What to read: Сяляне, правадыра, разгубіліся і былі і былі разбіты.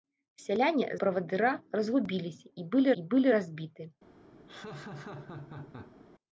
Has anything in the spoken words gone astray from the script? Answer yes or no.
no